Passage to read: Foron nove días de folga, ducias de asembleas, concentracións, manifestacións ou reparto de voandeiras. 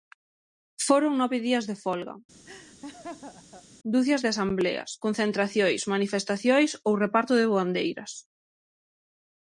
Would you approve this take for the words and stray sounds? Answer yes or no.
no